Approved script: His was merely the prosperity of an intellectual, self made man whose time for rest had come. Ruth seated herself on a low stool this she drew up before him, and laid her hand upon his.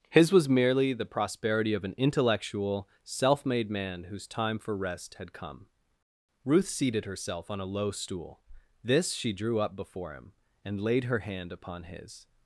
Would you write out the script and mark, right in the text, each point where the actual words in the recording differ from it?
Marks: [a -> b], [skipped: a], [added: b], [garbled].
His was merely the prosperity of an intellectual, self made man whose time for rest had come. Ruth seated herself on a low stool this she drew up before him, and laid her hand upon his.